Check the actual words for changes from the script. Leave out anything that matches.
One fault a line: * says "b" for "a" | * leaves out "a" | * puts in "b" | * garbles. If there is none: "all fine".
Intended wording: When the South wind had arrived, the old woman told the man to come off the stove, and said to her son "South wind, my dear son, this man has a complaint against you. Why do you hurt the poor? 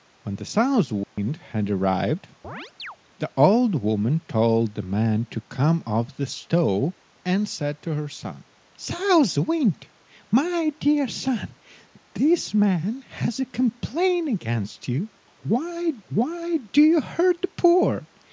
* puts in "why"